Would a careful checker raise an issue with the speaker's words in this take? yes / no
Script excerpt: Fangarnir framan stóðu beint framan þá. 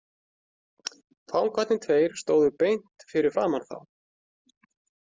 yes